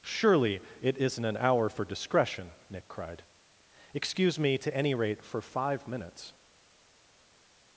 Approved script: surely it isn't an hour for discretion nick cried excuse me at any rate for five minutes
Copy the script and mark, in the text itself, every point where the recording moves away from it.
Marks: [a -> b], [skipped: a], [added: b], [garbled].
surely it isn't an hour for discretion nick cried excuse me [at -> to] any rate for five minutes